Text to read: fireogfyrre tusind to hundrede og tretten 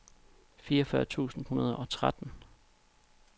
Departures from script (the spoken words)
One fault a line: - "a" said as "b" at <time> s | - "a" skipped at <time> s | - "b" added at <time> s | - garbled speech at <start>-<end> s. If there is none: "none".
- "to" skipped at 1.4 s